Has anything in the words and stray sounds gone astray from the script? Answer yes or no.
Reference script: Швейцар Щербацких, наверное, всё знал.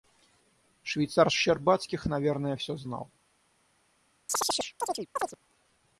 yes